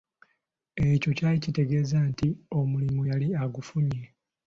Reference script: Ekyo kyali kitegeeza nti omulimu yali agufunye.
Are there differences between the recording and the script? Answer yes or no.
no